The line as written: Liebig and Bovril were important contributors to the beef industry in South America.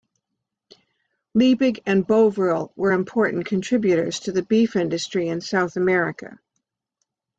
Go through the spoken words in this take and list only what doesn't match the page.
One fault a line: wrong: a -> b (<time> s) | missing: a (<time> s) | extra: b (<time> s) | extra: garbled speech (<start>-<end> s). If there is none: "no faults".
no faults